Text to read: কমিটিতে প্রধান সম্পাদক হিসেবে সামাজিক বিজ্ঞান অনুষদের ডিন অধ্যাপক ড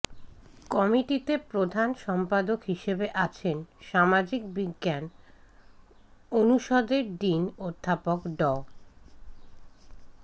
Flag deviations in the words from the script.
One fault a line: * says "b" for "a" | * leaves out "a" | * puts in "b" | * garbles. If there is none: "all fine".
* puts in "আছেন"